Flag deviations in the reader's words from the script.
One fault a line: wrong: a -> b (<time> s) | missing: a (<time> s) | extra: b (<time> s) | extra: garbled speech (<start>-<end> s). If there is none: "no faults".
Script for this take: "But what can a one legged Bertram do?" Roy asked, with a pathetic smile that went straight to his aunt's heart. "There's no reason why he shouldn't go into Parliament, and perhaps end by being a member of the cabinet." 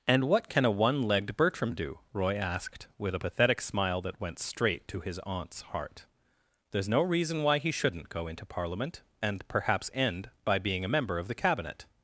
wrong: But -> And (0.1 s)